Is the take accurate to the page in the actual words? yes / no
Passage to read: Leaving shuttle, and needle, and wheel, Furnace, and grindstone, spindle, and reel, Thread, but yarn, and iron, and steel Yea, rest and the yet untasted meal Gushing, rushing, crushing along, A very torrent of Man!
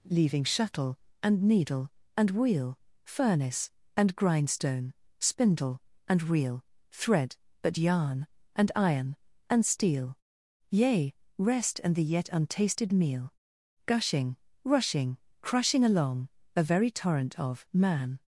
yes